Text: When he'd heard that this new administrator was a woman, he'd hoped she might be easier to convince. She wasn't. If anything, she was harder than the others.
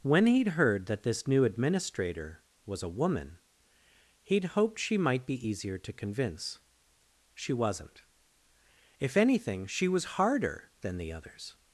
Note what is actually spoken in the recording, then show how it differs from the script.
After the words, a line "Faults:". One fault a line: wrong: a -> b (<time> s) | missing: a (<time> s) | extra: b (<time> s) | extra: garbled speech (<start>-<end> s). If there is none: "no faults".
When he'd heard that this new administrator was a woman, he'd hoped she might be easier to convince. She wasn't. If anything, she was harder than the others.
Faults:
no faults